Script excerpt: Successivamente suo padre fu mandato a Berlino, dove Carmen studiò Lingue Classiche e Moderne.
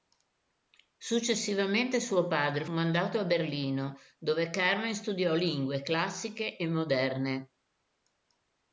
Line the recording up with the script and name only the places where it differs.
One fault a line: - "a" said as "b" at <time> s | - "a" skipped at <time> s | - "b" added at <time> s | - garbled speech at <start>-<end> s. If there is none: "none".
- "fu" skipped at 2.6 s